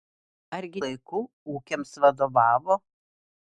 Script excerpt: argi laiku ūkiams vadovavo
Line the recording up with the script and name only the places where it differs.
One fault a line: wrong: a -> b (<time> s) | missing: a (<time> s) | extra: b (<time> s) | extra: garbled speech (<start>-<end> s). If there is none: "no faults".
no faults